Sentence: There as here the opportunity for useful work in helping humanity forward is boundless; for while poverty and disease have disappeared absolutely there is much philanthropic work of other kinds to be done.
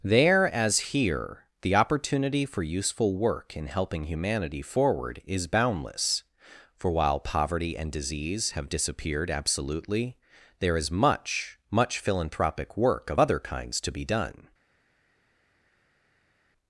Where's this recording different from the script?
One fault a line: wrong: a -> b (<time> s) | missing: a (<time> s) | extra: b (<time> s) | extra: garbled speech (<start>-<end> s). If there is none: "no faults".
extra: much (11.7 s)